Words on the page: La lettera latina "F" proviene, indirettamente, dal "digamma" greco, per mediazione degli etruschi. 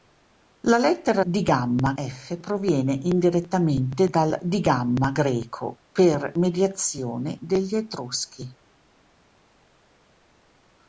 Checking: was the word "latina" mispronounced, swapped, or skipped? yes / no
yes